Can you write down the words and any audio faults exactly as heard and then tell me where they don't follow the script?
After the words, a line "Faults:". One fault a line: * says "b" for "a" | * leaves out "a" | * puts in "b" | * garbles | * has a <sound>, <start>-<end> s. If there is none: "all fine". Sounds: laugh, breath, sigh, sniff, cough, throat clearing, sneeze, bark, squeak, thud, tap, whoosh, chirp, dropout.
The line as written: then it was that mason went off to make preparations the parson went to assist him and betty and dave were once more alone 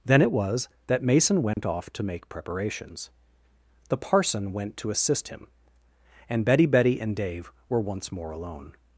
then it was that mason went off to make preparations the parson went to assist him and betty betty and dave were once more alone
Faults:
* has a dropout, 1.5-1.6 s
* puts in "betty"